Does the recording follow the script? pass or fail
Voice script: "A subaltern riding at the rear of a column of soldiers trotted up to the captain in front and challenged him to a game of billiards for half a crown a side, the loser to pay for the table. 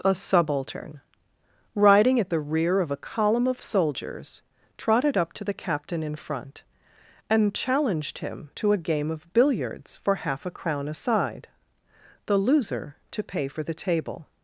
pass